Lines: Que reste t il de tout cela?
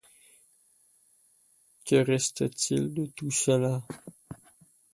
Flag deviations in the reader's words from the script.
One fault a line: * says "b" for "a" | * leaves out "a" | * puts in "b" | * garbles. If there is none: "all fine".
all fine